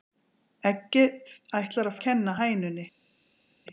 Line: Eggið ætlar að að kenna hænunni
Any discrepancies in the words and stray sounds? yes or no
no